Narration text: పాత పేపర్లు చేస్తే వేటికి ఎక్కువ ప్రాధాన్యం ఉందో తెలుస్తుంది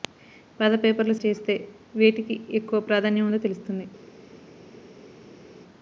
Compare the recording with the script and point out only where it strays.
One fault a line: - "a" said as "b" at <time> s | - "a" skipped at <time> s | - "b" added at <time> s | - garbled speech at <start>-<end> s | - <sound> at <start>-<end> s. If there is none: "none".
none